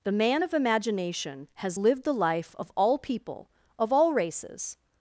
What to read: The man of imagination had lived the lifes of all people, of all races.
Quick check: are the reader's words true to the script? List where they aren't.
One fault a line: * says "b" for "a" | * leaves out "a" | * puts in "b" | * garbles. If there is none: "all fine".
* says "has" for "had"
* says "life" for "lifes"